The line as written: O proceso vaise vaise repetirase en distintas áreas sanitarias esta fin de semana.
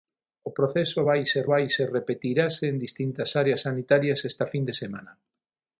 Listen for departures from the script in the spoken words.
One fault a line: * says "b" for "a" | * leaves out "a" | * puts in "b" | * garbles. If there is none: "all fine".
all fine